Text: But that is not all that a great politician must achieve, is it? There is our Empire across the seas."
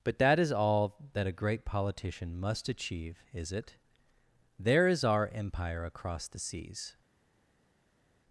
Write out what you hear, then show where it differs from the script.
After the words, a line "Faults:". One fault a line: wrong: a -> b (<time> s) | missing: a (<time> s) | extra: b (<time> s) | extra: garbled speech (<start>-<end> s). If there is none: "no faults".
But that is all that a great politician must achieve, is it? There is our Empire across the seas."
Faults:
missing: not (0.5 s)